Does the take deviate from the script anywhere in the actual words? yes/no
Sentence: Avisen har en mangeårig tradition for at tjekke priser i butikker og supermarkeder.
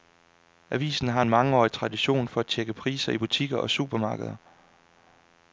no